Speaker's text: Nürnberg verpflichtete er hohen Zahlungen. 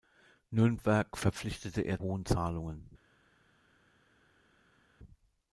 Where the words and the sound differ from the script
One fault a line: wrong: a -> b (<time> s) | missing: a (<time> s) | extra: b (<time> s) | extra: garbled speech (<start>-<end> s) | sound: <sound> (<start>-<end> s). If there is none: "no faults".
no faults